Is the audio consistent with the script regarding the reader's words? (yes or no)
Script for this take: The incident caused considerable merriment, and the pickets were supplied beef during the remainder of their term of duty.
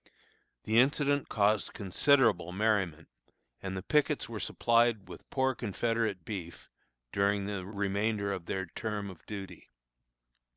no